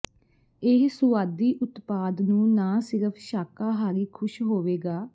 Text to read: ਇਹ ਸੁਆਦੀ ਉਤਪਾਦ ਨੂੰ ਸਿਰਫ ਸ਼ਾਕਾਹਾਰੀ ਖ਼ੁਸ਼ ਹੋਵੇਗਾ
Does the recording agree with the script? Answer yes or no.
no